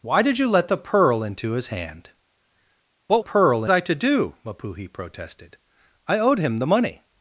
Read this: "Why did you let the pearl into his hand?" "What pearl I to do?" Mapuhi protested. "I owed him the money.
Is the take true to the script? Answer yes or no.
yes